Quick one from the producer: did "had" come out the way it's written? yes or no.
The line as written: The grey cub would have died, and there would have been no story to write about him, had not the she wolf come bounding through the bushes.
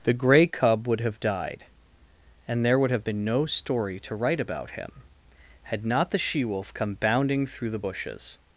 yes